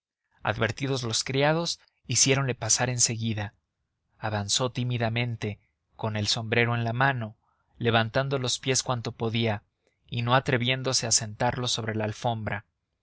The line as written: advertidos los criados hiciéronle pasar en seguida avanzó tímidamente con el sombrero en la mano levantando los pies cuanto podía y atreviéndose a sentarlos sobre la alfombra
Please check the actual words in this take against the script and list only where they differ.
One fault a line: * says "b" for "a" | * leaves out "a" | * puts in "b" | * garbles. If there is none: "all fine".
* puts in "no"